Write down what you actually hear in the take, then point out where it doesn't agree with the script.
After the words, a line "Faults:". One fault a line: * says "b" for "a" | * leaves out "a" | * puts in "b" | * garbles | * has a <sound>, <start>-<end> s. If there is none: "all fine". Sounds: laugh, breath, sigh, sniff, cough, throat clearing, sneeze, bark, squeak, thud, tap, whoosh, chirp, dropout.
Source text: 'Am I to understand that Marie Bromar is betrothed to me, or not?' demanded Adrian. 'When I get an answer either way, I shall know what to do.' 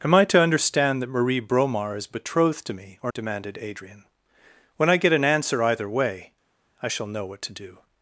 'Am I to understand that Marie Bromar is betrothed to me, or?' demanded Adrian. 'When I get an answer either way, I shall know what to do.'
Faults:
* leaves out "not"